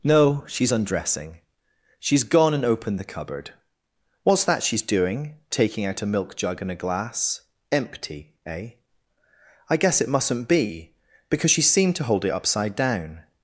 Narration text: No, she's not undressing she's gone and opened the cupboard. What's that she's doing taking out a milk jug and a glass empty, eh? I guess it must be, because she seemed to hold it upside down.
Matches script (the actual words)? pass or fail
fail